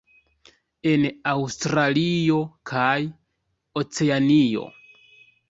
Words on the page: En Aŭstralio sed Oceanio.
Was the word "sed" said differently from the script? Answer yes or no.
yes